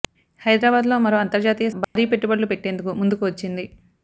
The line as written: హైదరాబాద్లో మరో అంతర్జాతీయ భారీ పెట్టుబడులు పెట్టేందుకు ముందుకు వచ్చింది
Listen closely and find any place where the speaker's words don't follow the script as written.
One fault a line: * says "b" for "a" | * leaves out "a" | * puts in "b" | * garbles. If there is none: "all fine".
all fine